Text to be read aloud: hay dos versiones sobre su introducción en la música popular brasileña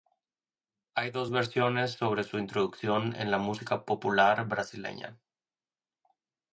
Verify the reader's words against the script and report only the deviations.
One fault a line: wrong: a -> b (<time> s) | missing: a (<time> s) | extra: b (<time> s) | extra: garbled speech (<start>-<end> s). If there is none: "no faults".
no faults